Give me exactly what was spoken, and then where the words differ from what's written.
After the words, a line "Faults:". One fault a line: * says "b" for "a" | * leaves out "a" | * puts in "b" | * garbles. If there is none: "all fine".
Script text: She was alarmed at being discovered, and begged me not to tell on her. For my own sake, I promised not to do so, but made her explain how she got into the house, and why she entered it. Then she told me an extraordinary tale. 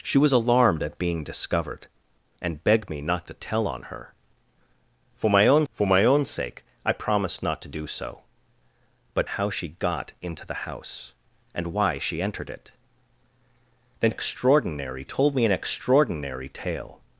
She was alarmed at being discovered, and begged me not to tell on her. For my own for my own sake, I promised not to do so, but how she got into the house, and why she entered it. Then extraordinary told me an extraordinary tale.
Faults:
* puts in "for my own"
* leaves out "made her explain"
* says "extraordinary" for "she"